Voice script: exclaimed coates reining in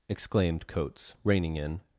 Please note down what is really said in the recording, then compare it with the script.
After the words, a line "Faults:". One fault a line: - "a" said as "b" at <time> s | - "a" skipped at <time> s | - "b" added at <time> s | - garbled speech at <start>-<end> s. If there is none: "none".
exclaimed coates reining in
Faults:
none